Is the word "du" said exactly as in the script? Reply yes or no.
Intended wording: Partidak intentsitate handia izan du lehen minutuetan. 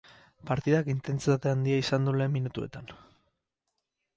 yes